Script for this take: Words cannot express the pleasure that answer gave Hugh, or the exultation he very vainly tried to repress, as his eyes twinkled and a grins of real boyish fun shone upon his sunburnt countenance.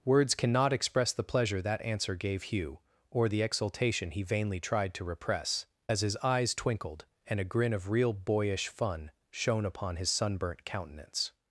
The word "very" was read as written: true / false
false